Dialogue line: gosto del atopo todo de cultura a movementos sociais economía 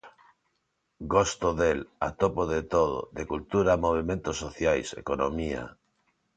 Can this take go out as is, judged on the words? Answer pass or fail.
fail